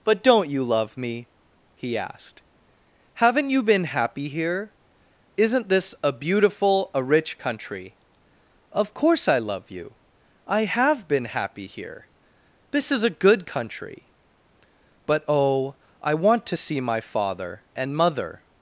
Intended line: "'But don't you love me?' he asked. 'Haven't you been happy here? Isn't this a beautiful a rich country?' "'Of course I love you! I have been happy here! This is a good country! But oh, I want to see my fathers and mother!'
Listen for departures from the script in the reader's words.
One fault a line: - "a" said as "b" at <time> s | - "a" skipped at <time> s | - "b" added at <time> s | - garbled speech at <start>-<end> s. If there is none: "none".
- "fathers" said as "father" at 17.0 s